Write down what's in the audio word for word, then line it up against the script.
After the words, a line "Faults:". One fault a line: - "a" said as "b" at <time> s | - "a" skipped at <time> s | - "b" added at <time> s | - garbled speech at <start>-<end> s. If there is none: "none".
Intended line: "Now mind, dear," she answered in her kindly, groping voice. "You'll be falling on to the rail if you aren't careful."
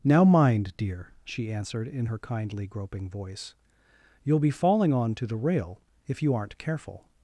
"Now mind, dear," she answered in her kindly, groping voice. "You'll be falling on to the rail if you aren't careful."
Faults:
none